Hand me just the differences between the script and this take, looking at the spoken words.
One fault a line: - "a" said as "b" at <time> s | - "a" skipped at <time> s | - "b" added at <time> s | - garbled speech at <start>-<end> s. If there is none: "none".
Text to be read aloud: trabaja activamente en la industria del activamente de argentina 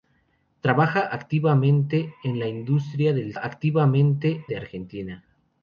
none